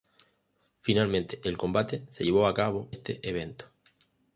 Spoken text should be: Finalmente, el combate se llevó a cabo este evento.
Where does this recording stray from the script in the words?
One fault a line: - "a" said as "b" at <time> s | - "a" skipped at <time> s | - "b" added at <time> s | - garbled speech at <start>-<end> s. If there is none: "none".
none